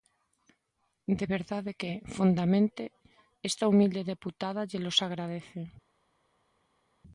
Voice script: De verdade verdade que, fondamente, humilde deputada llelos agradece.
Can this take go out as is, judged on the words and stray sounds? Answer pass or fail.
fail